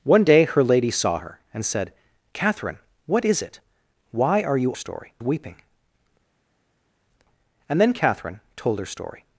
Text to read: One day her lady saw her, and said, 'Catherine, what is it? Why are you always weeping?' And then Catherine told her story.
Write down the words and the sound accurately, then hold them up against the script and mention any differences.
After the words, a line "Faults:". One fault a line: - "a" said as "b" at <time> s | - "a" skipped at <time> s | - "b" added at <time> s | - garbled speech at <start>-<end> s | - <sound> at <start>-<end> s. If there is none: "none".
One day her lady saw her, and said, 'Catherine, what is it? Why are you story weeping?' And then Catherine told her story.
Faults:
- "always" said as "story" at 4.7 s